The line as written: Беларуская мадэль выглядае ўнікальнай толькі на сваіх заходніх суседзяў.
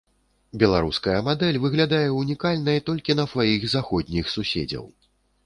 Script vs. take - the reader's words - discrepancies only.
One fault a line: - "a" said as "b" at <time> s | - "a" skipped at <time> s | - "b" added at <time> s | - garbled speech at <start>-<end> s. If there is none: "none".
none